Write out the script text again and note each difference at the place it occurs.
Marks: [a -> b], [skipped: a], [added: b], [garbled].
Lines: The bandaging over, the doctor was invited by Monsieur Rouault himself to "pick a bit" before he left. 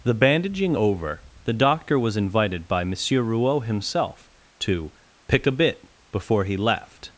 The bandaging over, the doctor was invited by Monsieur Rouault himself to "pick a bit" before he left.